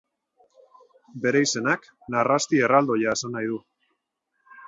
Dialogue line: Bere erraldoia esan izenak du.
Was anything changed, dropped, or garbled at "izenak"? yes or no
yes